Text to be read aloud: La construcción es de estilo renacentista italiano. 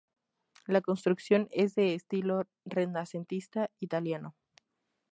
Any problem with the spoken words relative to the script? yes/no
no